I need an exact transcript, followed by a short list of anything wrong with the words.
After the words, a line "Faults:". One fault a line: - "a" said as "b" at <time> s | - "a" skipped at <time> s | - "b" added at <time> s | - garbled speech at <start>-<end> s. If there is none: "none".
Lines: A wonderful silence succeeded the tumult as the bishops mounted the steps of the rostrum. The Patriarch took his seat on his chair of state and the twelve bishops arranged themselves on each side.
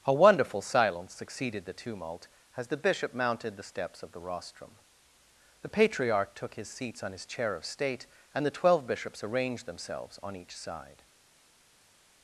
A wonderful silence succeeded the tumult as the bishop mounted the steps of the rostrum. The Patriarch took his seats on his chair of state and the twelve bishops arranged themselves on each side.
Faults:
- "bishops" said as "bishop" at 2.8 s
- "seat" said as "seats" at 6.7 s